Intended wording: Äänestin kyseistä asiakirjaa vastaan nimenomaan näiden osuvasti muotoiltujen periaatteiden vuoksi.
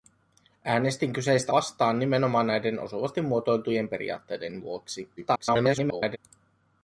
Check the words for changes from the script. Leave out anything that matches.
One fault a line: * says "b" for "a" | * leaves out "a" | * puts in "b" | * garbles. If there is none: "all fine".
* leaves out "asiakirjaa"
* garbles